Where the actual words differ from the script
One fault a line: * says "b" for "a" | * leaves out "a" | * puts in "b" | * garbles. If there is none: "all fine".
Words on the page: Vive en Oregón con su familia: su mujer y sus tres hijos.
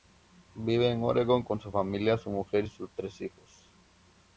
all fine